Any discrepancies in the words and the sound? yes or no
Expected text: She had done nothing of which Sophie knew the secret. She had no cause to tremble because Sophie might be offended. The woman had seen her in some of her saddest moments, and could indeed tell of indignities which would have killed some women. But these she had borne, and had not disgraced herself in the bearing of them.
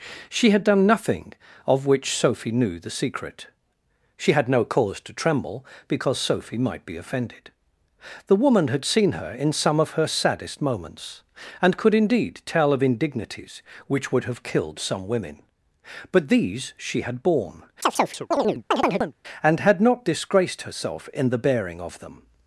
yes